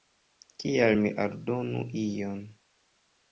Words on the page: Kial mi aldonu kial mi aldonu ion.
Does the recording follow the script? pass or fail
fail